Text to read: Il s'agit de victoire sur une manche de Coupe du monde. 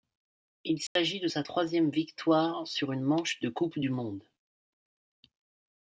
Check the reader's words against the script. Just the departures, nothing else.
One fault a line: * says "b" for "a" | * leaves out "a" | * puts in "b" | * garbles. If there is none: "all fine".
* puts in "sa troisième"